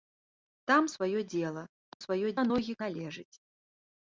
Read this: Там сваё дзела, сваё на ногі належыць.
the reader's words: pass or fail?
pass